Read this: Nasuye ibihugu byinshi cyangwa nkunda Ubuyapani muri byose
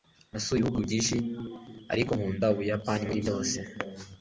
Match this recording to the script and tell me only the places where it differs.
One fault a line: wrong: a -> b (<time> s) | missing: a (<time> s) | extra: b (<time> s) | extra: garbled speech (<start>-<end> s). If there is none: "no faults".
wrong: cyangwa -> ariko (1.9 s)